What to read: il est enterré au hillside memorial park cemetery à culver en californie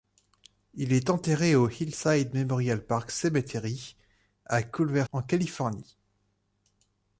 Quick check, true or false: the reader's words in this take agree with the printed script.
true